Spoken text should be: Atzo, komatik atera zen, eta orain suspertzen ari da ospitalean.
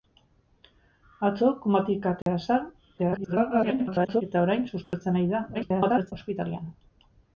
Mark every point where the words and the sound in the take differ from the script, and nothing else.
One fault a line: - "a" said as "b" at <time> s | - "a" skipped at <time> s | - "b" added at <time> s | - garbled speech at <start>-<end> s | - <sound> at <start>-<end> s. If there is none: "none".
- dropout at 2.2-2.3 s
- garbled speech at 3.0-4.2 s
- dropout at 4.8-4.9 s
- garbled speech at 5.5-6.1 s